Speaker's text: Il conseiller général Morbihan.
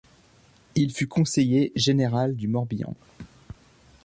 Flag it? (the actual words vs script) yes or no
yes